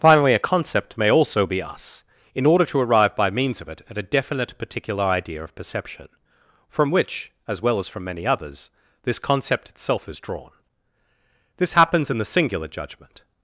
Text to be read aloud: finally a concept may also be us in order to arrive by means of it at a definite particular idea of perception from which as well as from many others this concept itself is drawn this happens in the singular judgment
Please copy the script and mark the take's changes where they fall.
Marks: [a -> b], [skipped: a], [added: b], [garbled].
finally a concept may also be us in order to arrive by means of it at a definite particular idea of perception from which as well as from many others this concept itself is drawn this happens in the singular judgment